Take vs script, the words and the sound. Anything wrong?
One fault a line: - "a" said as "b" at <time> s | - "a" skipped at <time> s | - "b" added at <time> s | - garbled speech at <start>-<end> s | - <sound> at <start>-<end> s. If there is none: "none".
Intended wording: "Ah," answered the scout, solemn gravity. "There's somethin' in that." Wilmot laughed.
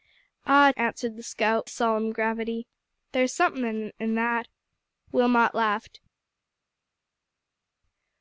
none